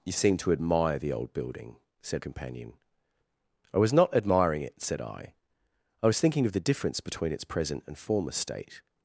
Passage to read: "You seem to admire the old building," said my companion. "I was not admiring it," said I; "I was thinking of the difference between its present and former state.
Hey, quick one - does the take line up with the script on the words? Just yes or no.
no